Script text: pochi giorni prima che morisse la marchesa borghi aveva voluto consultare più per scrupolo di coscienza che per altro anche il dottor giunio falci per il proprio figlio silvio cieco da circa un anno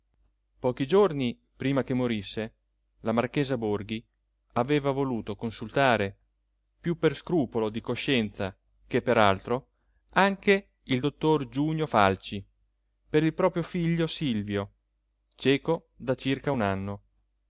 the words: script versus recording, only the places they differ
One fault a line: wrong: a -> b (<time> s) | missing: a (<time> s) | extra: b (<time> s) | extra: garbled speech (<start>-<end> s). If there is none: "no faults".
no faults